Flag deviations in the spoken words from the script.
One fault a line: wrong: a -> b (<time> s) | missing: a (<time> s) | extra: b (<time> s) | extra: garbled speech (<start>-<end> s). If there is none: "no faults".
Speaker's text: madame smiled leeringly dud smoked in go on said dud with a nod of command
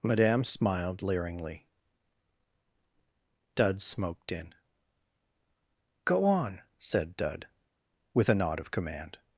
no faults